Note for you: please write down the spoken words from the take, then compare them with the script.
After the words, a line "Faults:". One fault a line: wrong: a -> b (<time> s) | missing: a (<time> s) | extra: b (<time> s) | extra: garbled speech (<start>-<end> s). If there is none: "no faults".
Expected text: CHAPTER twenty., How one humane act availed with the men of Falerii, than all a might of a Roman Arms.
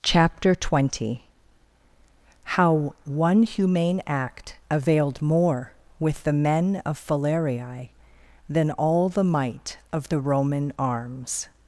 CHAPTER twenty., How one humane act availed more with the men of Falerii, than all the might of the Roman Arms.
Faults:
extra: more (5.2 s)
wrong: a -> the (9.1 s)
wrong: a -> the (10.1 s)